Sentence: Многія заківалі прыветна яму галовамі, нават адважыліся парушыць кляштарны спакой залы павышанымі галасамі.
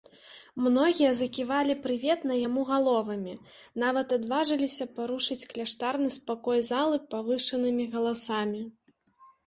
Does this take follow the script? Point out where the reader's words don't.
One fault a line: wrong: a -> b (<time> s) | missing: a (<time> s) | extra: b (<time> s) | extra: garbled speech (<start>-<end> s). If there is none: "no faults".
no faults